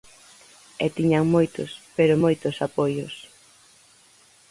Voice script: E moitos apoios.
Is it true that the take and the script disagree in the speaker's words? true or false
true